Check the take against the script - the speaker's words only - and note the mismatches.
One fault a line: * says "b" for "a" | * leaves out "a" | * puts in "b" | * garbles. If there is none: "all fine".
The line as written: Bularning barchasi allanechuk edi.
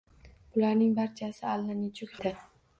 all fine